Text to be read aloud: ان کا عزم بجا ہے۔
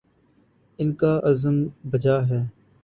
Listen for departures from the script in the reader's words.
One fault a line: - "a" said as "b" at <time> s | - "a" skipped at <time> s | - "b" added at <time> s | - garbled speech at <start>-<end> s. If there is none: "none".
none